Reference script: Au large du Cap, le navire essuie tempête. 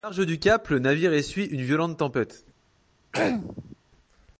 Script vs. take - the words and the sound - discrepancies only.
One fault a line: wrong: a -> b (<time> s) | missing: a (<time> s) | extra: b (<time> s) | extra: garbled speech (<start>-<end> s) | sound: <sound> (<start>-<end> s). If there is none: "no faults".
extra: une violente (1.5 s)
sound: throat clearing (3.1-3.8 s)